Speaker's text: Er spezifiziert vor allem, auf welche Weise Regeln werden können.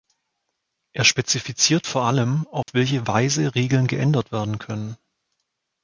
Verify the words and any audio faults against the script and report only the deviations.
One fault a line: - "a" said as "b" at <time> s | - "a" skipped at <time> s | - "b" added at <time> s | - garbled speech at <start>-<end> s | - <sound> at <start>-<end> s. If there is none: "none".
- dropout at 2.6-2.7 s
- "geändert" added at 3.9 s